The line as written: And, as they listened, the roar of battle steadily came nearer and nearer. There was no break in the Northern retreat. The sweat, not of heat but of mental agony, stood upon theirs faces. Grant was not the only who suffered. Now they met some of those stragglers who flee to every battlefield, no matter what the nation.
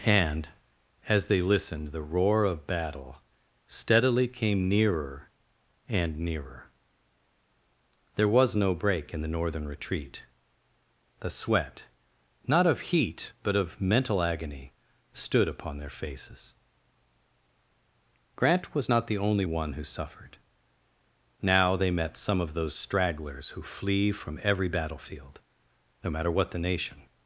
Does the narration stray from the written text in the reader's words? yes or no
yes